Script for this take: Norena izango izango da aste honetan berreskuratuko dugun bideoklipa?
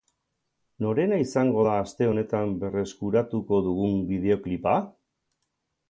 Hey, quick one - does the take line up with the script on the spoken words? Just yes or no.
no